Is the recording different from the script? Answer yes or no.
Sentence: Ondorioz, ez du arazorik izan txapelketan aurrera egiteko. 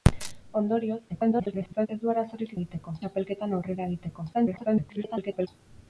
yes